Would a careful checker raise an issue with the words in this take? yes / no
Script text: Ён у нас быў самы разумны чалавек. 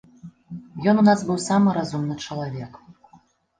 no